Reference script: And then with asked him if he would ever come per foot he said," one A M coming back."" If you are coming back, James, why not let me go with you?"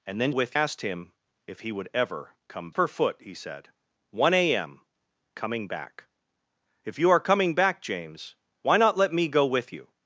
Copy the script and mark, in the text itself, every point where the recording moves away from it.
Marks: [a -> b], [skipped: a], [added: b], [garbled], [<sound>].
And then with asked him if he would ever come per foot he said," one A M coming back."" If you are coming back, James, why not let me go with you?"